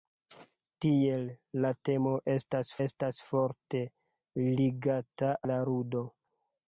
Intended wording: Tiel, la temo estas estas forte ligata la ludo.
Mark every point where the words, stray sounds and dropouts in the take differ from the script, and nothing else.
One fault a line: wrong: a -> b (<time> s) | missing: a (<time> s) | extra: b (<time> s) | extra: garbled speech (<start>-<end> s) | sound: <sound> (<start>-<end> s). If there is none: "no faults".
no faults